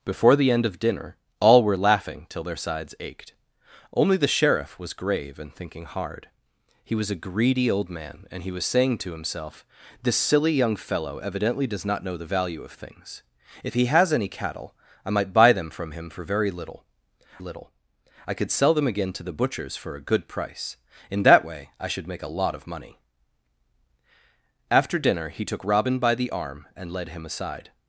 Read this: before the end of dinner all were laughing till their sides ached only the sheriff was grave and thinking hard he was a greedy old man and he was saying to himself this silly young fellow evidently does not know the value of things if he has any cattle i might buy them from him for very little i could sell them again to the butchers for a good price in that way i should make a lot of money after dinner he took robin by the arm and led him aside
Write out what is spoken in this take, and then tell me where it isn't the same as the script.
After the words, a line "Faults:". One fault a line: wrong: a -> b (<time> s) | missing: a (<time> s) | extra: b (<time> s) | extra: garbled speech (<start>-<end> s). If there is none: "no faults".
before the end of dinner all were laughing till their sides ached only the sheriff was grave and thinking hard he was a greedy old man and he was saying to himself this silly young fellow evidently does not know the value of things if he has any cattle i might buy them from him for very little little i could sell them again to the butchers for a good price in that way i should make a lot of money after dinner he took robin by the arm and led him aside
Faults:
extra: little (17.4 s)